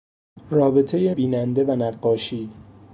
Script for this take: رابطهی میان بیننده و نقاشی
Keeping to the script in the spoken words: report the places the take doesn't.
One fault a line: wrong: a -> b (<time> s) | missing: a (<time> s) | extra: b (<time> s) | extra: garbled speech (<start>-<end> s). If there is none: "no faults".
missing: میان (1.1 s)